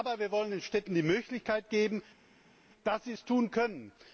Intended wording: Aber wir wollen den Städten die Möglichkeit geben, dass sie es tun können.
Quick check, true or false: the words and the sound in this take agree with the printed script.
true